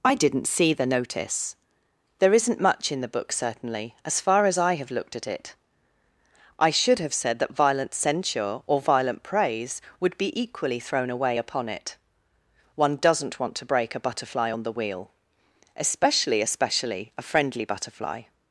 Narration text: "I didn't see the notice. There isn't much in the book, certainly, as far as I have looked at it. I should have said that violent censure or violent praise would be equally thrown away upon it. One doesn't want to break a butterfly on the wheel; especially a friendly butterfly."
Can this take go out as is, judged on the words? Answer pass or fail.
fail